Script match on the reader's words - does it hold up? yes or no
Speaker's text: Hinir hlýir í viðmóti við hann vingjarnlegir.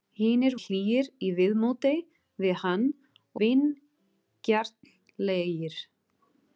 yes